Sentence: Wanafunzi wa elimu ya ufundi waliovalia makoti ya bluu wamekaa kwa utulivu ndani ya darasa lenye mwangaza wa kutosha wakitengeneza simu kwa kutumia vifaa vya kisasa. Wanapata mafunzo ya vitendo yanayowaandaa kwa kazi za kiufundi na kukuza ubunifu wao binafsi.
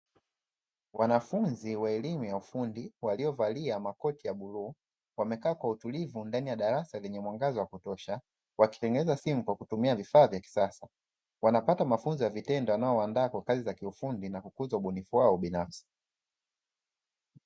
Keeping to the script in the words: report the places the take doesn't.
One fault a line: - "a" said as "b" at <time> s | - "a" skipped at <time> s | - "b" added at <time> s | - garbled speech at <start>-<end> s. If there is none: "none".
none